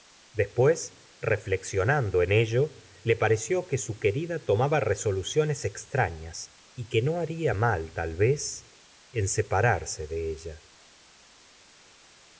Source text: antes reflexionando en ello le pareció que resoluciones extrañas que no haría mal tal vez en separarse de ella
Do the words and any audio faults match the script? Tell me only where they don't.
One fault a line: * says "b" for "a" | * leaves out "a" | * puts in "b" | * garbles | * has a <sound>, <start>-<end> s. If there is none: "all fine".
* says "después" for "antes"
* puts in "su querida tomaba"
* puts in "y"